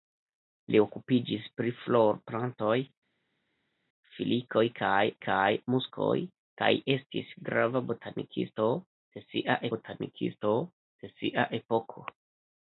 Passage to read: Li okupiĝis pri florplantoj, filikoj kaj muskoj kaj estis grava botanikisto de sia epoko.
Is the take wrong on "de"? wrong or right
right